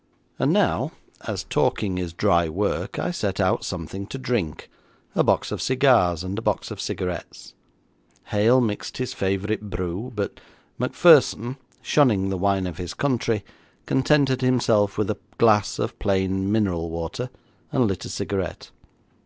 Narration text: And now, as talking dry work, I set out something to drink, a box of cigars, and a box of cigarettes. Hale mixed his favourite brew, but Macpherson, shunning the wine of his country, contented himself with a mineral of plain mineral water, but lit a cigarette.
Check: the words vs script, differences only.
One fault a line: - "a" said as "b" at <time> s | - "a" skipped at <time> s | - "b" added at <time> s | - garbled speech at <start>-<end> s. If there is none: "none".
- "is" added at 2.0 s
- "mineral" said as "glass" at 15.4 s
- "but" said as "and" at 17.7 s